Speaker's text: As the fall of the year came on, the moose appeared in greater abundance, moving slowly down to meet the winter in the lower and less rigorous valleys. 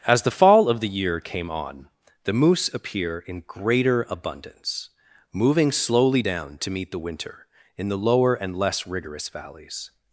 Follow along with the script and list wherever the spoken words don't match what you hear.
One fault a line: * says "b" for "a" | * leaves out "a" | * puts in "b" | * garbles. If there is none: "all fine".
* says "appear" for "appeared"